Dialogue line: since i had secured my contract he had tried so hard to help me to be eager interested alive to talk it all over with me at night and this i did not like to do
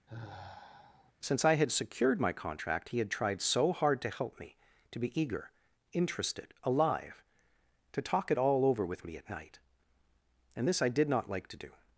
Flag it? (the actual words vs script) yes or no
no